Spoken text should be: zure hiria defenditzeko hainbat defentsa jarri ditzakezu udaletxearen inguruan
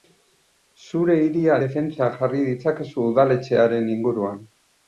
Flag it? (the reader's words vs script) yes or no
yes